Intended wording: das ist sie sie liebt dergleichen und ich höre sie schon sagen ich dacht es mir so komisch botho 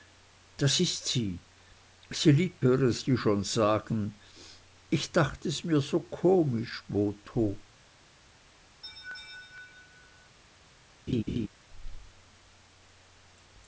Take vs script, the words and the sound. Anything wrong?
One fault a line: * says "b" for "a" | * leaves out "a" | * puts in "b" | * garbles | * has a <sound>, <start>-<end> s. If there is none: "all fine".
* leaves out "dergleichen und ich"
* has a laugh, 8.8-10.4 s
* has a laugh, 11.1-11.5 s